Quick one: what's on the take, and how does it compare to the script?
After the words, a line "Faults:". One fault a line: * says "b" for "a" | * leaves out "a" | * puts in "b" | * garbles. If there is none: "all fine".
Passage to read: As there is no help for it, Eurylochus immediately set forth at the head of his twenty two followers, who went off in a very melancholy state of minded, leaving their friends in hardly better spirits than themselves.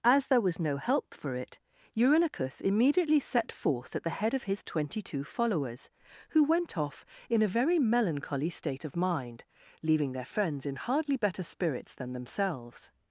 As there was no help for it, Eurylochus immediately set forth at the head of his twenty two followers, who went off in a very melancholy state of mind, leaving their friends in hardly better spirits than themselves.
Faults:
* says "was" for "is"
* says "mind" for "minded"